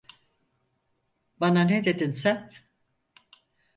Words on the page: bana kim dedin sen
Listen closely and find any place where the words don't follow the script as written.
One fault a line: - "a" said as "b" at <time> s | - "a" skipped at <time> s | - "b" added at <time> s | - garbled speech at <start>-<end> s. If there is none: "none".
- "kim" said as "ne" at 1.6 s